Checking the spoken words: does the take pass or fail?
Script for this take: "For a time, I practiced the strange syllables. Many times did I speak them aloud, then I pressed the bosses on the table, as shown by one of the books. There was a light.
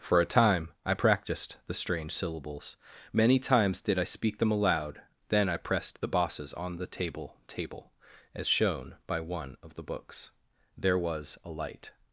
fail